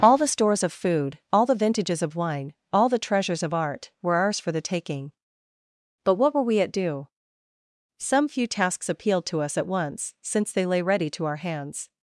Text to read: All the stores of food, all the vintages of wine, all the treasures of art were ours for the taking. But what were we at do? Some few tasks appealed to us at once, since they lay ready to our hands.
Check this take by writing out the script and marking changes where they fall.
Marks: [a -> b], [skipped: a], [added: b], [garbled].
All the stores of food, all the vintages of wine, all the treasures of art were ours for the taking. But what were we at do? Some few tasks appealed to us at once, since they lay ready to our hands.